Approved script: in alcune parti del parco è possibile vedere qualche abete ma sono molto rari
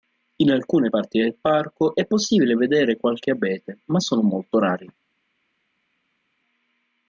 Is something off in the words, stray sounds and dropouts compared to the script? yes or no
no